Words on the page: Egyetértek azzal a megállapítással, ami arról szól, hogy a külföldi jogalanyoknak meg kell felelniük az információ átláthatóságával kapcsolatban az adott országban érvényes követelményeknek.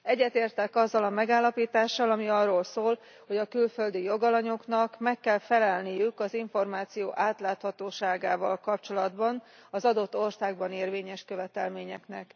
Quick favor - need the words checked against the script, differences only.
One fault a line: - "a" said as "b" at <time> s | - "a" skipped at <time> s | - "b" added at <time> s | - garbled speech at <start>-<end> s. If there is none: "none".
none